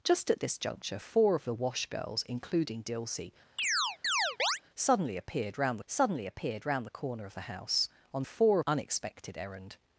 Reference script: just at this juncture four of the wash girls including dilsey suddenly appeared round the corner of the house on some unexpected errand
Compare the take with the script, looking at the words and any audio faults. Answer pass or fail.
fail